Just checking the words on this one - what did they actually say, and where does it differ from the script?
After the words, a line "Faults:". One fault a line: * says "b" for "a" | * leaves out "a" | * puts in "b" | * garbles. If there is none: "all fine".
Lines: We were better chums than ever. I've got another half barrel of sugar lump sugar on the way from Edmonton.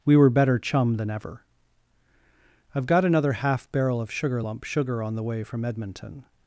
We were better chum than ever. I've got another half barrel of sugar lump sugar on the way from Edmonton.
Faults:
* says "chum" for "chums"